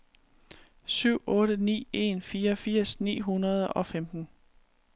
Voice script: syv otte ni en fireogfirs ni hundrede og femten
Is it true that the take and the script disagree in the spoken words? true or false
false